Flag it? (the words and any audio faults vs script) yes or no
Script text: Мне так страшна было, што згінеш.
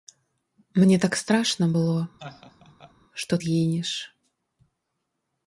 yes